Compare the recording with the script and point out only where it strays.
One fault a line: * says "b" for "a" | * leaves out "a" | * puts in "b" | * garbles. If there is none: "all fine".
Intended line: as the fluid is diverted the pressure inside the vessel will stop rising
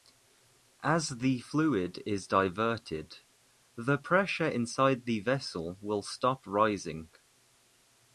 all fine